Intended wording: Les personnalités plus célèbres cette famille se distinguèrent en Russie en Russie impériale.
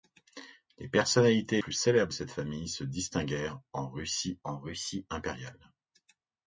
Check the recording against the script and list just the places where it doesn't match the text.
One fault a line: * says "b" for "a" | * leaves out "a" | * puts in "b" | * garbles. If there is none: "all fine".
all fine